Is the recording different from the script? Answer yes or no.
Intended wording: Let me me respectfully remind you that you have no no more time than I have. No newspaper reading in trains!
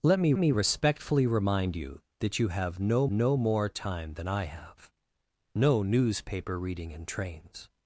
no